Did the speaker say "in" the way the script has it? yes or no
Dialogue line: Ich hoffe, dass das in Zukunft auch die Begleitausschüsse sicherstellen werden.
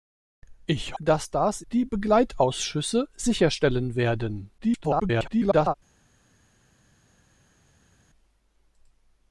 no